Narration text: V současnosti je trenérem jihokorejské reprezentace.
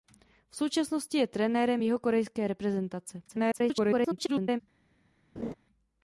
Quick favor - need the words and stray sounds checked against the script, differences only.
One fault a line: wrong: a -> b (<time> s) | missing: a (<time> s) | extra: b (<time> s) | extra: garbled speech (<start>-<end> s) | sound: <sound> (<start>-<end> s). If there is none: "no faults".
extra: garbled speech (3.3-4.6 s)
sound: laugh (5.4-5.5 s)